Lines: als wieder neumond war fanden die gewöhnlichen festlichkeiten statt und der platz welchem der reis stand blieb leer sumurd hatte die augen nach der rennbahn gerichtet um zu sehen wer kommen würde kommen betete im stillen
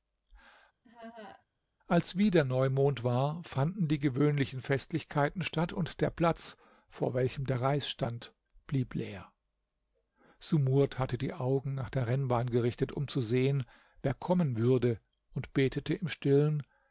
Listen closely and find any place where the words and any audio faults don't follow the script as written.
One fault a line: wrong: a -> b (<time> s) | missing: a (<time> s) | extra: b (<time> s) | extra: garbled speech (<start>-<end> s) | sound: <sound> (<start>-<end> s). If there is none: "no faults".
sound: laugh (0.8-1.5 s)
extra: vor (6.9 s)
wrong: kommen -> und (15.3 s)